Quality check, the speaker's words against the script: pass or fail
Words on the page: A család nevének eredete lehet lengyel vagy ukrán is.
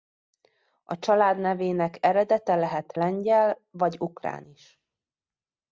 pass